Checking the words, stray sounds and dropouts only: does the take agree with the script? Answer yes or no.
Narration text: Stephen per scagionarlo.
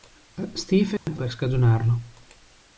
no